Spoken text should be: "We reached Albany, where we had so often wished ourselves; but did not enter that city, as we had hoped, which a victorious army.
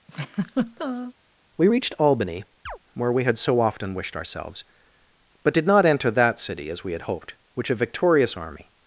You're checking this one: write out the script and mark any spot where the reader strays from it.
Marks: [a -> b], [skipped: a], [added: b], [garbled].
"We reached Albany, where we had so often wished ourselves; but did not enter that city, as we had hoped, which a victorious army.